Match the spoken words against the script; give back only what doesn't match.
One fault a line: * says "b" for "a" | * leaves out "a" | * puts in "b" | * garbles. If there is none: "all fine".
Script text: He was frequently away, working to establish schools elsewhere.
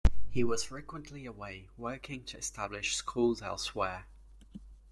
all fine